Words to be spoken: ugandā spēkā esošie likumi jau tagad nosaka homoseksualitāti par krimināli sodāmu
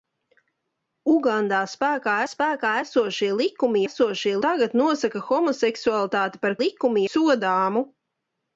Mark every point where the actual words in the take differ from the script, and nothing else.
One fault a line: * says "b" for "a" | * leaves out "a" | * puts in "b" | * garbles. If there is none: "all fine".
* puts in "spēkā"
* says "esošie" for "jau"
* says "likumi" for "krimināli"